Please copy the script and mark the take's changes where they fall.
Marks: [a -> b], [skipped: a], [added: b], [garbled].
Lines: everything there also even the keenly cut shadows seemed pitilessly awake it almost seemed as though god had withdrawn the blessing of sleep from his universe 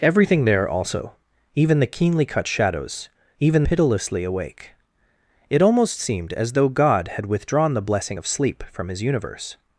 everything there also even the keenly cut shadows [seemed -> even] pitilessly awake it almost seemed as though god had withdrawn the blessing of sleep from his universe